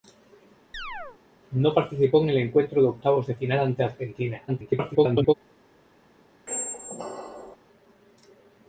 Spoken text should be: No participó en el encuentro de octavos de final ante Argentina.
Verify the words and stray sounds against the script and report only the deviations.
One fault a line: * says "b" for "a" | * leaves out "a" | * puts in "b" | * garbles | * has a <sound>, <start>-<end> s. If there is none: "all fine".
* has a chirp, 0.7-1.2 s
* garbles
* has a squeak, 6.5-7.6 s